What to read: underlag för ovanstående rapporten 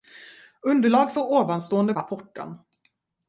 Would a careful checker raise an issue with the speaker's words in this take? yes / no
no